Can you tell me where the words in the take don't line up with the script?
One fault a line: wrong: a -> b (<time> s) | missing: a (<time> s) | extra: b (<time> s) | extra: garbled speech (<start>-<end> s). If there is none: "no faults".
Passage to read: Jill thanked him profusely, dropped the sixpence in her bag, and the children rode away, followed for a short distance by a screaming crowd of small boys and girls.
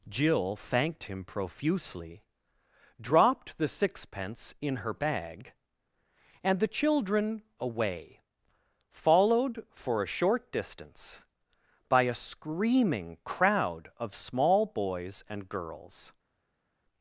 missing: rode (7.4 s)